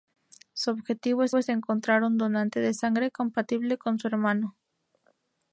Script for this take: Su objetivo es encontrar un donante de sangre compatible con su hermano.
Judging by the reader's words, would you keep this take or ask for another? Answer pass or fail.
fail